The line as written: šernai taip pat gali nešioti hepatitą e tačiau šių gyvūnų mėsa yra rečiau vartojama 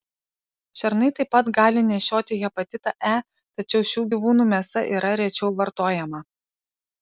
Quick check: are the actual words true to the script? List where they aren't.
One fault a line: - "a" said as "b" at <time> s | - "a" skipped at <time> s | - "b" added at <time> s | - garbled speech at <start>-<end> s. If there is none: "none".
none